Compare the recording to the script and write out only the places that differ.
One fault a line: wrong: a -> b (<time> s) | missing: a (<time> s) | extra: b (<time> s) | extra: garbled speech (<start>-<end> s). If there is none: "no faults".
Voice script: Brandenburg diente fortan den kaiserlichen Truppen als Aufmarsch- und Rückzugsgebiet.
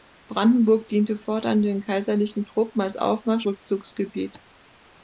missing: und (3.5 s)